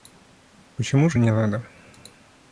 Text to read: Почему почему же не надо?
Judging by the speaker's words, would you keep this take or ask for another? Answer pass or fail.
fail